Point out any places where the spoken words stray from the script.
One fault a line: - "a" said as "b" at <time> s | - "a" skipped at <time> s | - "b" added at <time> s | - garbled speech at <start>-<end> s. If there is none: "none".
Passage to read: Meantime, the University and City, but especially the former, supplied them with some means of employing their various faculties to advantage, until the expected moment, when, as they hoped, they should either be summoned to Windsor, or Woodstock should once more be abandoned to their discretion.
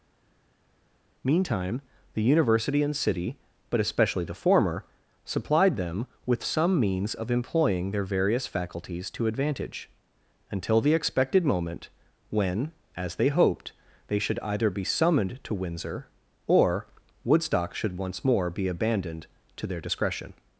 none